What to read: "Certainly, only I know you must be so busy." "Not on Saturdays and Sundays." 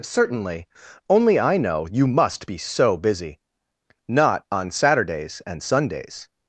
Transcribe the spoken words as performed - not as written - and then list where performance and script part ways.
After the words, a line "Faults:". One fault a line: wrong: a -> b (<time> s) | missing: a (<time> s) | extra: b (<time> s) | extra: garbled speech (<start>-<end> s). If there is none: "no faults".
"Certainly, only I know you must be so busy." "Not on Saturdays and Sundays."
Faults:
no faults